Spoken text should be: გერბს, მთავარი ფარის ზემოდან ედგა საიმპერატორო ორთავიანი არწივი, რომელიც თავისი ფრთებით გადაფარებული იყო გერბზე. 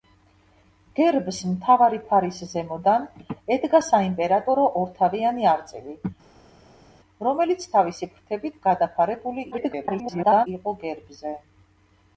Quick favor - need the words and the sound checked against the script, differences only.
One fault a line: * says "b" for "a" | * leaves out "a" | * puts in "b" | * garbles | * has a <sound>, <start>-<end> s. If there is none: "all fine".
* garbles